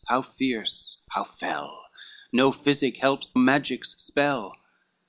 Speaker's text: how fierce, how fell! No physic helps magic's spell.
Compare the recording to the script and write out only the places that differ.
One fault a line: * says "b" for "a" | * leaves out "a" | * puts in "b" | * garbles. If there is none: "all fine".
all fine